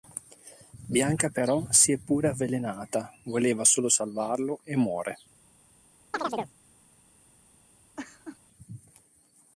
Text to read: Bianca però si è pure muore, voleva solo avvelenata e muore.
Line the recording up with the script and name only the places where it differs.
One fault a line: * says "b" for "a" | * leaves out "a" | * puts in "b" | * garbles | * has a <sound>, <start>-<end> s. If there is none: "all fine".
* says "avvelenata" for "muore"
* says "salvarlo" for "avvelenata"
* has a chirp, 6.1-6.5 s
* has a laugh, 8.0-8.4 s